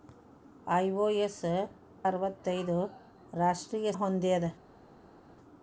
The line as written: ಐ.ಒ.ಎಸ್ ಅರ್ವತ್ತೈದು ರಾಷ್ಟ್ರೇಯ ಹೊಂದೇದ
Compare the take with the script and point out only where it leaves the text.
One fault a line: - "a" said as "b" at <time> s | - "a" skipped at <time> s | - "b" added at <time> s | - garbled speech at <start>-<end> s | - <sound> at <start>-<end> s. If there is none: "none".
none